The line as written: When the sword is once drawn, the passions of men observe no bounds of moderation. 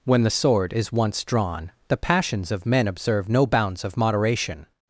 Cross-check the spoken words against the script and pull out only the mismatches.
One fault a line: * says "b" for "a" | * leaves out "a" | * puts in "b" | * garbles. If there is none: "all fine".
all fine